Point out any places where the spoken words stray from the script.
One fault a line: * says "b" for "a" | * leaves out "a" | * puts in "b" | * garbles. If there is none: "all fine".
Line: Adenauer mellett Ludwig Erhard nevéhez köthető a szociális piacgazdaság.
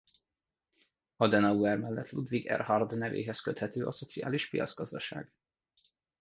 all fine